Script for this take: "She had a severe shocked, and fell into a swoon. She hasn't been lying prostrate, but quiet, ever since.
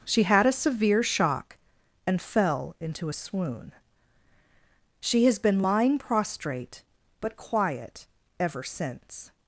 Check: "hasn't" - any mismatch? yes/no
yes